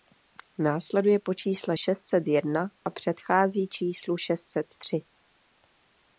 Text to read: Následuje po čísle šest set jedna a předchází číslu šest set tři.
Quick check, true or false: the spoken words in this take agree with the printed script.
true